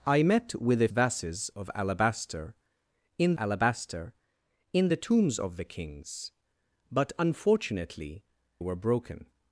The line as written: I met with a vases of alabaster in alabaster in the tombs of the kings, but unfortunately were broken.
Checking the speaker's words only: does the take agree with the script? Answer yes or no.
yes